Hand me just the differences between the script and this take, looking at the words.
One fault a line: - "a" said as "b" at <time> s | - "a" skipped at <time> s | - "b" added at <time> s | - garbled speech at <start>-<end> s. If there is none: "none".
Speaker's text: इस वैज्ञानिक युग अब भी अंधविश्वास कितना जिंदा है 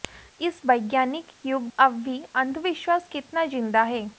none